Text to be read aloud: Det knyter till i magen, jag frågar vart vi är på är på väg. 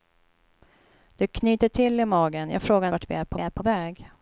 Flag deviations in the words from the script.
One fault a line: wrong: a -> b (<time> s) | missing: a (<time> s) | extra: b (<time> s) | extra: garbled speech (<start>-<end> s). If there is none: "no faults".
no faults